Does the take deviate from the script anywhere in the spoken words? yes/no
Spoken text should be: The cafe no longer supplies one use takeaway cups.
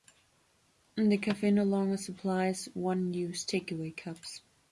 no